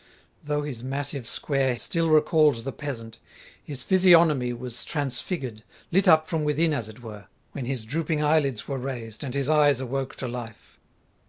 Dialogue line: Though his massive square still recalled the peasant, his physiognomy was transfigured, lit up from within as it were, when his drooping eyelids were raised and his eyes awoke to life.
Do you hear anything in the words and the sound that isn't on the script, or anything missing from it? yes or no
no